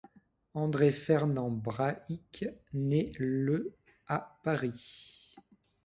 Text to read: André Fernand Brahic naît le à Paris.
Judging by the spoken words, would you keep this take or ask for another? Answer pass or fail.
pass